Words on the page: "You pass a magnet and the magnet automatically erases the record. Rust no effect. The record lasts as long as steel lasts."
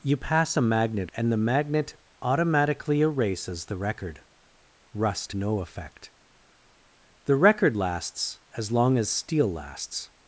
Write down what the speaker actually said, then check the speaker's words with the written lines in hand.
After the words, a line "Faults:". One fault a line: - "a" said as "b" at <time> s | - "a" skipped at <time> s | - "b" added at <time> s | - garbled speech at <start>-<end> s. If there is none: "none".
"You pass a magnet and the magnet automatically erases the record. Rust no effect. The record lasts as long as steel lasts."
Faults:
none